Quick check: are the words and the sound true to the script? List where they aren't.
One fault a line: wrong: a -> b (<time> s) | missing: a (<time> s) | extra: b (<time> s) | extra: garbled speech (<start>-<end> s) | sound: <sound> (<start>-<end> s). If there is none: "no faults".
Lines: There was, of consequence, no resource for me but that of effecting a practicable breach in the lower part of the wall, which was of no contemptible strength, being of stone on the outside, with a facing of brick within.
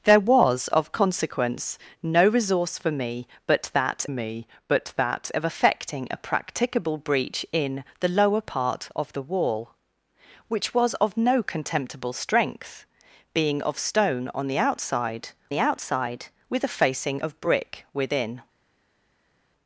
extra: me but that (4.1 s)
extra: the outside (15.5 s)